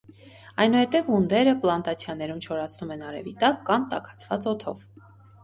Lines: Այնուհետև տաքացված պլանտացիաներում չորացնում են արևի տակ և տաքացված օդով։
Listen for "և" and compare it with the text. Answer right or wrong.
wrong